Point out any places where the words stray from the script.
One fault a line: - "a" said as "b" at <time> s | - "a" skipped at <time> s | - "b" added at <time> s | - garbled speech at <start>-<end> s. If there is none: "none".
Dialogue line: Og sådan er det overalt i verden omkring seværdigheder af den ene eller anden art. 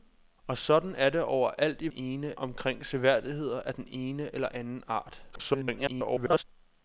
- "verden" said as "ene" at 1.9 s
- garbled speech at 5.3-6.4 s